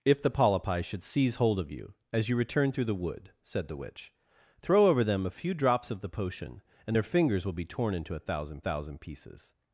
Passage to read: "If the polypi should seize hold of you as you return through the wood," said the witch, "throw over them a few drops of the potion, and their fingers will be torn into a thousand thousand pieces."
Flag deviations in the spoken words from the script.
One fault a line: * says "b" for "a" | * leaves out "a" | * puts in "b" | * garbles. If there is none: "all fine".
all fine